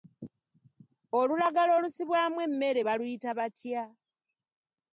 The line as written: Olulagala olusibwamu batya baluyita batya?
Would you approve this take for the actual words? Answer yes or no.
no